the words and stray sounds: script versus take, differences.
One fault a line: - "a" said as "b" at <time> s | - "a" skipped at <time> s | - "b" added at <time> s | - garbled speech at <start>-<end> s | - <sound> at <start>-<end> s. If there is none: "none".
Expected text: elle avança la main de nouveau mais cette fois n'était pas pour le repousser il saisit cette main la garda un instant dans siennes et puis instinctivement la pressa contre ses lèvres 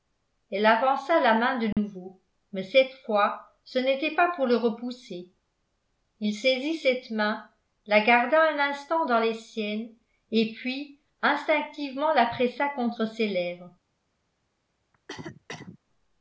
- dropout at 1.7-1.8 s
- "ce" added at 3.6 s
- "les" added at 9.2 s
- cough at 14.9-15.8 s